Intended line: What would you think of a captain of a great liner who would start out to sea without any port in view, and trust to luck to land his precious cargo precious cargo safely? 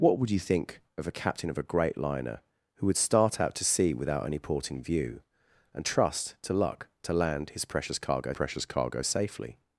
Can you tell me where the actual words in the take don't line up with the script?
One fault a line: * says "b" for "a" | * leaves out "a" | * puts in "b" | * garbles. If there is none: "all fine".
all fine